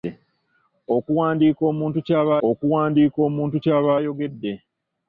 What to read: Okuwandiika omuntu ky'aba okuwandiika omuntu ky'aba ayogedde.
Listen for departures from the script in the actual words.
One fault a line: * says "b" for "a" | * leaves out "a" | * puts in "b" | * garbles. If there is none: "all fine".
all fine